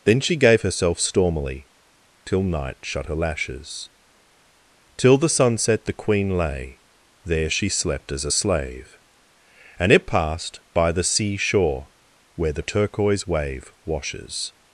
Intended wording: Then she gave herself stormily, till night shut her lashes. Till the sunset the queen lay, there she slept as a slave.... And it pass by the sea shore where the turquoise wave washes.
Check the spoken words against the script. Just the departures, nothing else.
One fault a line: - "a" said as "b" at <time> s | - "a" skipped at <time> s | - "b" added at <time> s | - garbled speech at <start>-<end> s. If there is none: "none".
- "pass" said as "passed" at 10.1 s